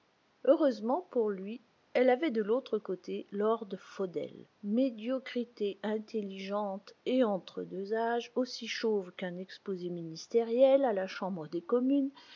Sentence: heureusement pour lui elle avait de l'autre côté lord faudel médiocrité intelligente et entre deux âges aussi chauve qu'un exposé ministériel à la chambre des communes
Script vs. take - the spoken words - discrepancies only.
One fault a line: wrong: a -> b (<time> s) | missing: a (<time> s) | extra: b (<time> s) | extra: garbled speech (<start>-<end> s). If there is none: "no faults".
no faults